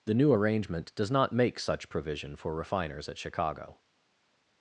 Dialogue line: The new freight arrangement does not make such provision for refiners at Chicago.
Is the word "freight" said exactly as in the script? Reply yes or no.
no